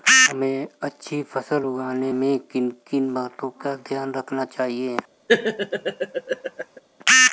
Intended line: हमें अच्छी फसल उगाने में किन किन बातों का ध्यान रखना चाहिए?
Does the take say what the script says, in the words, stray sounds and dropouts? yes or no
no